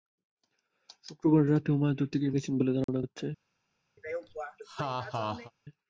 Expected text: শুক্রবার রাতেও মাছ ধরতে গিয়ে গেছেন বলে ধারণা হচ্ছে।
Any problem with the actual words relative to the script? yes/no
no